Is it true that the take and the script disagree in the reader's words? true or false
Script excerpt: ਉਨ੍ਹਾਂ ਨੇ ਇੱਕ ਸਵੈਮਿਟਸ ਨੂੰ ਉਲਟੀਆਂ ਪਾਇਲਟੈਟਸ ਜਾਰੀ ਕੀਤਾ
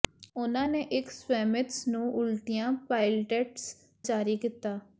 false